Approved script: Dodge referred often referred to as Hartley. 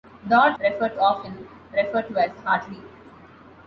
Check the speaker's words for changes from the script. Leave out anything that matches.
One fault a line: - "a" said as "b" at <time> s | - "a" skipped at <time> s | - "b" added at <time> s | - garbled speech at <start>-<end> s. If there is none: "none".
none